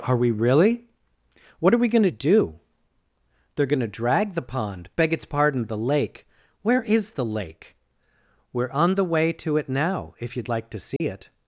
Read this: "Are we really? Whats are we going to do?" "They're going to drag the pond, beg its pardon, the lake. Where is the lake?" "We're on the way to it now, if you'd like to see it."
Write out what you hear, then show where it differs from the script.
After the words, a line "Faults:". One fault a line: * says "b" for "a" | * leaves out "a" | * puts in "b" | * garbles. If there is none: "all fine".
"Are we really? What are we going to do?" "They're going to drag the pond, beg its pardon, the lake. Where is the lake?" "We're on the way to it now, if you'd like to see it."
Faults:
* says "What" for "Whats"